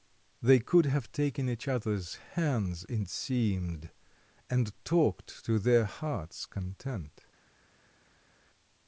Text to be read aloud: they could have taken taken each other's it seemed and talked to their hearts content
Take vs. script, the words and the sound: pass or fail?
fail